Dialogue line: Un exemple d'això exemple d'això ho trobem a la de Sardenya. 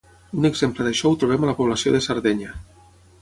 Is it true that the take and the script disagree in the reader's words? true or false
true